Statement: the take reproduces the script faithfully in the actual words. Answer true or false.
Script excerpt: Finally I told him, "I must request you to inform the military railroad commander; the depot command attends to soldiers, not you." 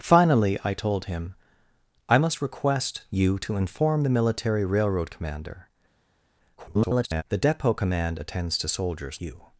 false